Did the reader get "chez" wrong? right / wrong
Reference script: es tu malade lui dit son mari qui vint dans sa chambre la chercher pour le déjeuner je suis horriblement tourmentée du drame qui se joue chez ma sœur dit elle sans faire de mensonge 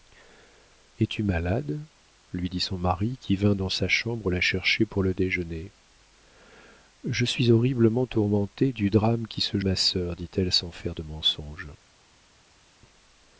wrong